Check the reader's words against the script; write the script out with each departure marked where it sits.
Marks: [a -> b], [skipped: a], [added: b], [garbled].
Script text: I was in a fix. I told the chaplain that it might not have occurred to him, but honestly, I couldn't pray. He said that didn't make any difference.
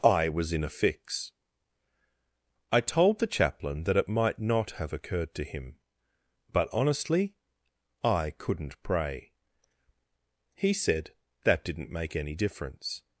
I was in a fix. I told the chaplain that it might not have occurred to him, but honestly, I couldn't pray. He said that didn't make any difference.